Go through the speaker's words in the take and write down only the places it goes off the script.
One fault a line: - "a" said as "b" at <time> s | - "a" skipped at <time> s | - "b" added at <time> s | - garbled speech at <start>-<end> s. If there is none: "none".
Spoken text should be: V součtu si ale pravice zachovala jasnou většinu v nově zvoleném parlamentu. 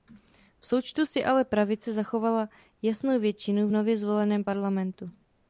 none